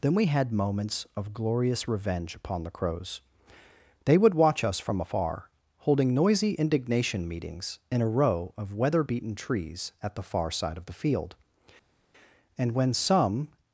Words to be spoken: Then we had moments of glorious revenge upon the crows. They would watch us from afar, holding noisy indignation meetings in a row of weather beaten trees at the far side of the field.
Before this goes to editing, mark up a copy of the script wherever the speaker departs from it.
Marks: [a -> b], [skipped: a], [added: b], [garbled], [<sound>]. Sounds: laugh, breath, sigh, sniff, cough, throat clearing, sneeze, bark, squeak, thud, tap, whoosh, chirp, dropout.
Then we had moments of glorious revenge upon the crows. They would watch us from afar, holding noisy indignation meetings in a row of weather beaten trees at the far side of the field. [added: And when some]